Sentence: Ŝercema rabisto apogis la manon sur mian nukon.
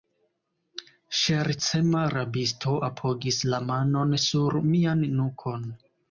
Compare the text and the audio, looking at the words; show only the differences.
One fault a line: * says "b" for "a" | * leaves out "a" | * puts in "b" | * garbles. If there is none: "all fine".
all fine